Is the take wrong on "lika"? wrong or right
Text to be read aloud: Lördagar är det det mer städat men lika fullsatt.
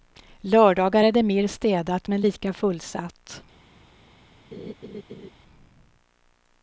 right